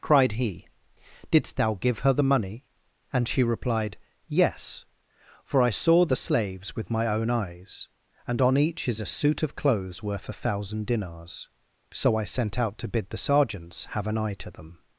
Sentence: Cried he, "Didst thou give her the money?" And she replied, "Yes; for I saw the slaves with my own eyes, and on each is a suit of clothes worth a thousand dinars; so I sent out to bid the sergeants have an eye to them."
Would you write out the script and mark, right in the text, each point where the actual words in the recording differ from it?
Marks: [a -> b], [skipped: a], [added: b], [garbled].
Cried he, "Didst thou give her the money?" And she replied, "Yes; for I saw the slaves with my own eyes, and on each is a suit of clothes worth a thousand dinars; so I sent out to bid the sergeants have an eye to them."